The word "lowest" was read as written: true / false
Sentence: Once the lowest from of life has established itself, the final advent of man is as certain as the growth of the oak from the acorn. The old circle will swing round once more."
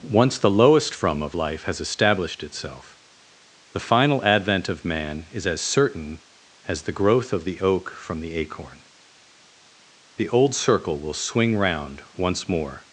true